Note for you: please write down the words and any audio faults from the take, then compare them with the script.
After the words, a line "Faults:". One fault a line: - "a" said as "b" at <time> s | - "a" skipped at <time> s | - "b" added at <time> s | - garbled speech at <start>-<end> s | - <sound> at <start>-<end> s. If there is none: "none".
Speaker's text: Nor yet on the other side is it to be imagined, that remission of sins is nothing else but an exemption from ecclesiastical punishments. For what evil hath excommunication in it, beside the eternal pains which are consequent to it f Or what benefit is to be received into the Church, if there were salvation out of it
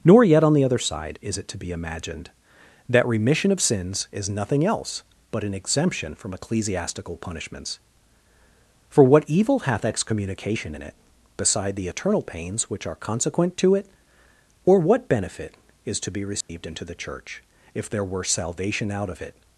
Nor yet on the other side is it to be imagined, that remission of sins is nothing else but an exemption from ecclesiastical punishments. For what evil hath excommunication in it, beside the eternal pains which are consequent to it Or what benefit is to be received into the Church, if there were salvation out of it
Faults:
- "f" skipped at 13.9 s
- dropout at 16.4-16.5 s